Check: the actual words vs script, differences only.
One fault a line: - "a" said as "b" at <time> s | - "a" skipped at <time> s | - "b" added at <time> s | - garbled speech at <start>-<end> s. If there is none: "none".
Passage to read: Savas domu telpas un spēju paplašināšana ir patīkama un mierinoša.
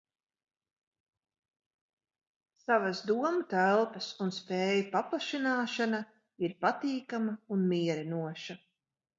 none